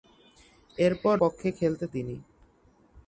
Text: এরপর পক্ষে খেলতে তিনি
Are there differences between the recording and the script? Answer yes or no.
no